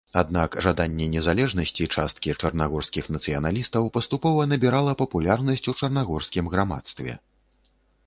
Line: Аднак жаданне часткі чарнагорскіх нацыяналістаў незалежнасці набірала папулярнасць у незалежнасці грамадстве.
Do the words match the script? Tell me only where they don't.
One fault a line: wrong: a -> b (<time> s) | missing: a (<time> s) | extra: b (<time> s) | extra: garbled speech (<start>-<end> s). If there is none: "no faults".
extra: незалежнасці (1.1 s)
wrong: незалежнасці -> паступова (4.0 s)
wrong: незалежнасці -> чарнагорскім (5.8 s)